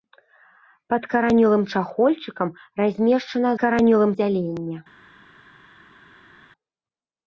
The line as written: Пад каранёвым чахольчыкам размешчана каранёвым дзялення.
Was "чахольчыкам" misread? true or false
false